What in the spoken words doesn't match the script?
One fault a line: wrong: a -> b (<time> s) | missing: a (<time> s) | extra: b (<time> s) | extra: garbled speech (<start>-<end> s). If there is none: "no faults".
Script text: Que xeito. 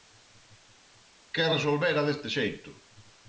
extra: resolvera deste (1.5 s)